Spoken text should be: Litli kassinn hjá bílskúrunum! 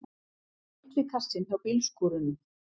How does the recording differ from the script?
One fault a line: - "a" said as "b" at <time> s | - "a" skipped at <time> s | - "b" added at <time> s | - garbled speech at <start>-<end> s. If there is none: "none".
none